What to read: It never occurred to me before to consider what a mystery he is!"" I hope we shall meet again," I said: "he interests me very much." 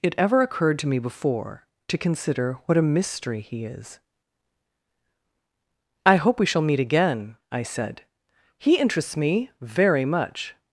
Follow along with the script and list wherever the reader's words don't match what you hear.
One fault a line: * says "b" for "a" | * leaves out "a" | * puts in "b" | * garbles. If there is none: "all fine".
* says "ever" for "never"